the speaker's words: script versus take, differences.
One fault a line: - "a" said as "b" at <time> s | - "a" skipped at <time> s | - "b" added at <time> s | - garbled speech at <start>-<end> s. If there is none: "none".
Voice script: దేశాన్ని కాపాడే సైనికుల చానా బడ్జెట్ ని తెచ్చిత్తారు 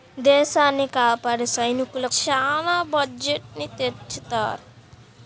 none